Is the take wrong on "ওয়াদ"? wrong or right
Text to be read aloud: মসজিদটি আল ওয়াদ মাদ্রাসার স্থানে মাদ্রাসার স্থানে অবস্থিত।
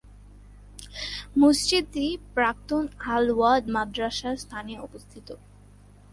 right